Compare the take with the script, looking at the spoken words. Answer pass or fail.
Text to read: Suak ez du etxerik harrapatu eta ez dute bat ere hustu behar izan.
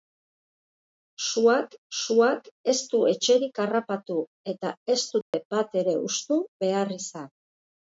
fail